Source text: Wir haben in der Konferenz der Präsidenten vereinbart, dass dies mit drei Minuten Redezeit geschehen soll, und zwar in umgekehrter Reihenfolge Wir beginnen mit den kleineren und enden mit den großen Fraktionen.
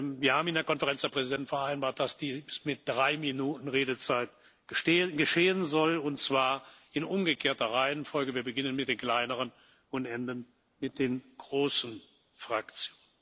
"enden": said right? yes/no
yes